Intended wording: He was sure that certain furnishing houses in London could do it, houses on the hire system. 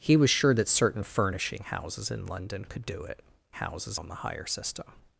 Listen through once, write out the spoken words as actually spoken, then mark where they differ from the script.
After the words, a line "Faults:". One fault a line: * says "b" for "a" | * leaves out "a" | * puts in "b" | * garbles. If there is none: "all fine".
He was sure that certain furnishing houses in London could do it, houses on the hire system.
Faults:
all fine